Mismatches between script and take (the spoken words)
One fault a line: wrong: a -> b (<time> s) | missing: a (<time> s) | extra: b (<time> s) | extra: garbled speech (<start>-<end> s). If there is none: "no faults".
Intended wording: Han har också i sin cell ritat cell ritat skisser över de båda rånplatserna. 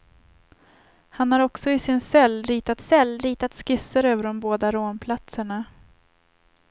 no faults